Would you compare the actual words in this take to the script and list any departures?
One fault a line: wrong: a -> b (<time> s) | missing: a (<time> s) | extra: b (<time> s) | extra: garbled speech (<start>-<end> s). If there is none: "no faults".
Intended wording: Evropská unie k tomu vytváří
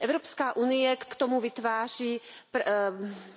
extra: k (1.0 s)